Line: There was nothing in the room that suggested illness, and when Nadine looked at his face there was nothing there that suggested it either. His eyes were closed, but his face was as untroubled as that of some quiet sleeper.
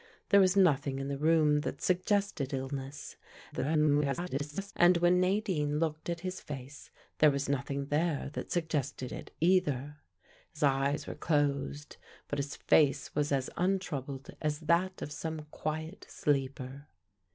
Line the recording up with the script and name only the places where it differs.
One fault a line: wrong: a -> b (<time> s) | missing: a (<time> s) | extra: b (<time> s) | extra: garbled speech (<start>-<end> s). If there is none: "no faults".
extra: garbled speech (3.5-4.7 s)